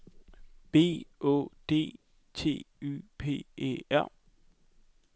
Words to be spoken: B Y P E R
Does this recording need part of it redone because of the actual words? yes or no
yes